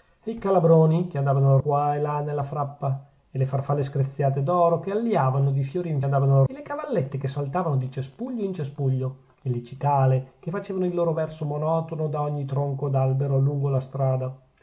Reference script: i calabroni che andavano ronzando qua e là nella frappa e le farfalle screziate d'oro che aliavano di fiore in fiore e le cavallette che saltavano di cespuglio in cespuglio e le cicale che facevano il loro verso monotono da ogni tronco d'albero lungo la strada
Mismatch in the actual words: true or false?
true